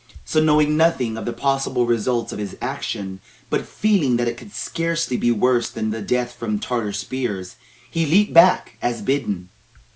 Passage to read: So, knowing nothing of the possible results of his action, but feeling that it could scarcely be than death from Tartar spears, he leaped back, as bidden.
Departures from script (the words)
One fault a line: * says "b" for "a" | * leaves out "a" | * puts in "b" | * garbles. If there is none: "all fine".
* puts in "worse"